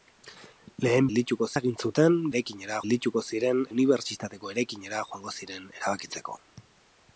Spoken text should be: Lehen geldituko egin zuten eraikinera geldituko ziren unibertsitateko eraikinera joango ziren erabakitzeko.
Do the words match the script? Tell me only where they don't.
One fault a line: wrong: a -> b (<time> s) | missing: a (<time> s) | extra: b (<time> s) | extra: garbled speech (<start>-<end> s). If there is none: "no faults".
no faults